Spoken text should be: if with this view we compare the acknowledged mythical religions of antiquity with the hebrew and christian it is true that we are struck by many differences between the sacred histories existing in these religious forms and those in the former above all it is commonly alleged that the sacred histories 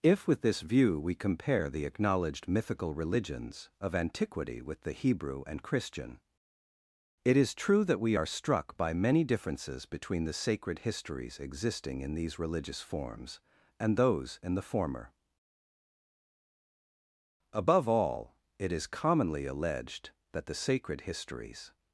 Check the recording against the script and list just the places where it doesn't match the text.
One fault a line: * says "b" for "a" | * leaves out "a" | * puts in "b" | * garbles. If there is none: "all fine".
all fine